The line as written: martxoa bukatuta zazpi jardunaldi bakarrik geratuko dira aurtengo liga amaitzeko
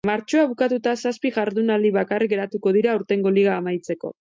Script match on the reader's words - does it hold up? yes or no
yes